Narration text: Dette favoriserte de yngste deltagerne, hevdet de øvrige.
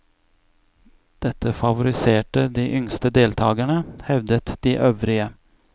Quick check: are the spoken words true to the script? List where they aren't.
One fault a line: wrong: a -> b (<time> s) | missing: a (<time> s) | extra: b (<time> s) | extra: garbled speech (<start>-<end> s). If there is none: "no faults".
no faults